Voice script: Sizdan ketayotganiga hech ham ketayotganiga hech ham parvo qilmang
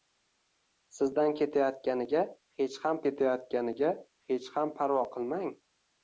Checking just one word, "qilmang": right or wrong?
right